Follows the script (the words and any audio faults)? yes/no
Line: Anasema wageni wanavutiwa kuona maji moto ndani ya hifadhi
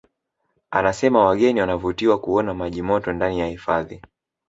yes